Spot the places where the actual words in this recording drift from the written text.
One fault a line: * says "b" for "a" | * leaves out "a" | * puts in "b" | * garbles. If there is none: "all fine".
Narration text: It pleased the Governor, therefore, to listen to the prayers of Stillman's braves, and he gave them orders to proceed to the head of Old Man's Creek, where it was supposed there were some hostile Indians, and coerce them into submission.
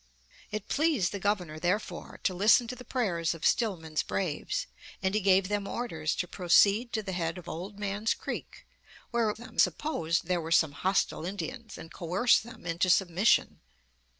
* says "them" for "was"